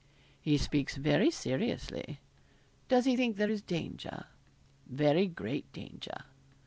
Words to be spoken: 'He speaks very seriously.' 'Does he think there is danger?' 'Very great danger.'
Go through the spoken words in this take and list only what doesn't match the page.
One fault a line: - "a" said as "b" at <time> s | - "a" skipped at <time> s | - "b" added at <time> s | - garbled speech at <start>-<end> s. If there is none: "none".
none